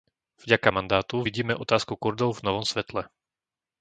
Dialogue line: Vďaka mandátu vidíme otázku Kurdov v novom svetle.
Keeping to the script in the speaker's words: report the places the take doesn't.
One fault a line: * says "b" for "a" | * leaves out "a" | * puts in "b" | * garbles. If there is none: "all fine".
all fine